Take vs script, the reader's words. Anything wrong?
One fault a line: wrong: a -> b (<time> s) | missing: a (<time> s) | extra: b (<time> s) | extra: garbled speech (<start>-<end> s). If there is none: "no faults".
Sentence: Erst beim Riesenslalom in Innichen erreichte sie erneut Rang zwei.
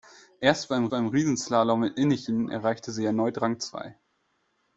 extra: beim (0.9 s)